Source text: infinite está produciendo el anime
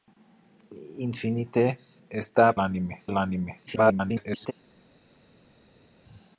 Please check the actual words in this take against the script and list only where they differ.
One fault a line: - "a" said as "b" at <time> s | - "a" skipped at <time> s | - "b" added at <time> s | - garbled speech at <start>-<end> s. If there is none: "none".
- "produciendo" said as "anime" at 2.6 s
- garbled speech at 3.7-4.5 s